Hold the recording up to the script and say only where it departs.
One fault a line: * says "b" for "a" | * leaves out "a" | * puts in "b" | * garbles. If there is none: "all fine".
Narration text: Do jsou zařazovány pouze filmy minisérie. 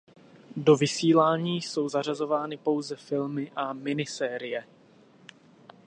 * puts in "vysílání"
* puts in "a"